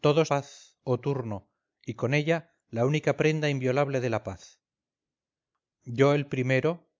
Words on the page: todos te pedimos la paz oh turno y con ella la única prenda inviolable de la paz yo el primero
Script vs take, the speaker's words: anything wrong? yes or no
yes